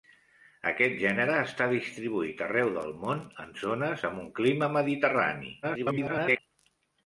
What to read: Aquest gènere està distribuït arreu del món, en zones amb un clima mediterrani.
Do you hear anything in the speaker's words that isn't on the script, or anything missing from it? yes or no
yes